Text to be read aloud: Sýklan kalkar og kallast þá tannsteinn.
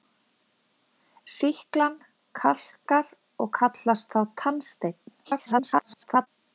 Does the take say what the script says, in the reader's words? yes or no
no